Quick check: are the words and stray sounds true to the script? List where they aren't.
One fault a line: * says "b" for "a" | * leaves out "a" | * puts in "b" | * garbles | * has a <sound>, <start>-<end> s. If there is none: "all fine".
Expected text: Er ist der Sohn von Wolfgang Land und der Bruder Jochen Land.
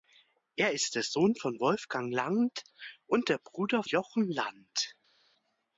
all fine